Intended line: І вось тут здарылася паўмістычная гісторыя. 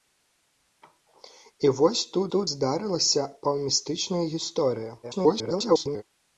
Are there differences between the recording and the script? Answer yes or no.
yes